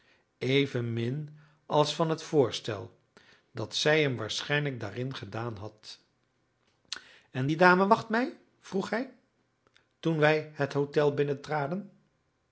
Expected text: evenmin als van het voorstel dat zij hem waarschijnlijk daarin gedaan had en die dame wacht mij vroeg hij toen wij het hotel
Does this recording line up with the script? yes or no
yes